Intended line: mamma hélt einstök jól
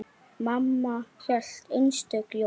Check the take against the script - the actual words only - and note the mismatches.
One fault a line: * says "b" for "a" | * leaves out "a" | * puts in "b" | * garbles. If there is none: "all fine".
all fine